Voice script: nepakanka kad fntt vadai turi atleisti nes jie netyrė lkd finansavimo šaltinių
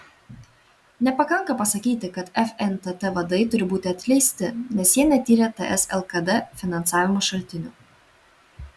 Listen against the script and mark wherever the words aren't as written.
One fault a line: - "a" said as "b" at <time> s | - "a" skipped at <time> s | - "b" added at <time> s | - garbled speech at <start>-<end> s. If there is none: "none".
- "pasakyti" added at 1.6 s
- "būti" added at 3.7 s
- "ts" added at 5.6 s